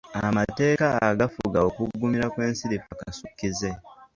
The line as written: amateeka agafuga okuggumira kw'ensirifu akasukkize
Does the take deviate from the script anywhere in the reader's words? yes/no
no